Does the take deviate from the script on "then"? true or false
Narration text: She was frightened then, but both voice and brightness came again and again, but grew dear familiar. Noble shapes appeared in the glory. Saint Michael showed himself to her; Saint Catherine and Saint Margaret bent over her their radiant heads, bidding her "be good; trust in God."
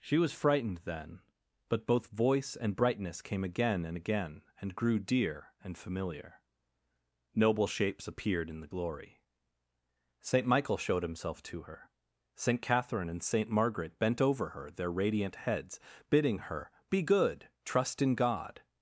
false